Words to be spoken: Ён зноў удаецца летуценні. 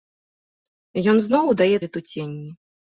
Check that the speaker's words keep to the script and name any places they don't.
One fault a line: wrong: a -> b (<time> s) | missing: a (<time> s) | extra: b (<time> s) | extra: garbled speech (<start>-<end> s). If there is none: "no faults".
no faults